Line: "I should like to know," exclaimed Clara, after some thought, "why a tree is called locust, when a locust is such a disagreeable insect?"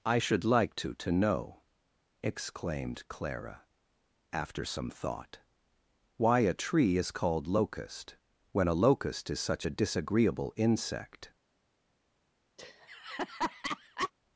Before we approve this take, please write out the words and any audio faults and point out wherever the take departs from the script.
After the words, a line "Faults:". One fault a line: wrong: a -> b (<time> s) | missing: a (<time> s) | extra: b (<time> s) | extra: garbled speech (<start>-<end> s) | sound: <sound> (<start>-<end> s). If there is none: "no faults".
"I should like to to know," exclaimed Clara, after some thought, "why a tree is called locust, when a locust is such a disagreeable insect?"
Faults:
extra: to (0.9 s)
sound: laugh (12.6-14.1 s)